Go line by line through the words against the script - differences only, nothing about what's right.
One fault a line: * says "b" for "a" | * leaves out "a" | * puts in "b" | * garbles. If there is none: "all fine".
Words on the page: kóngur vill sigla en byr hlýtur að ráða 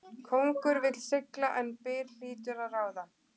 all fine